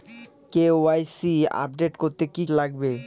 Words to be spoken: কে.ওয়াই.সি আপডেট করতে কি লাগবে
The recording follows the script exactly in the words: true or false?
true